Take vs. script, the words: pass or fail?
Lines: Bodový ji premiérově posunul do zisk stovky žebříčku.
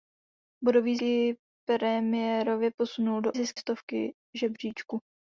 pass